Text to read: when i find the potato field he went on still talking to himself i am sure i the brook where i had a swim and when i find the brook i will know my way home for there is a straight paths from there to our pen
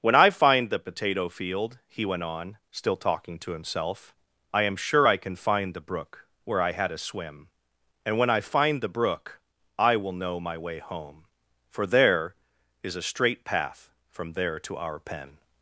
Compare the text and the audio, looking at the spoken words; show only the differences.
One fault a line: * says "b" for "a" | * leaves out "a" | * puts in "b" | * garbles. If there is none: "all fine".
* puts in "can find"
* says "path" for "paths"